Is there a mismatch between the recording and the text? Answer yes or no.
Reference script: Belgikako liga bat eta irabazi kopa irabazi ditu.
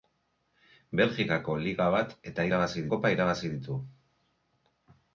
no